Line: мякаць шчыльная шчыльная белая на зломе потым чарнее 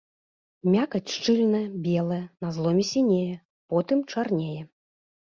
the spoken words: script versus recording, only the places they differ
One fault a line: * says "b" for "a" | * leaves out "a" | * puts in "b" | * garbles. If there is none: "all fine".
* leaves out "шчыльная"
* puts in "сінее"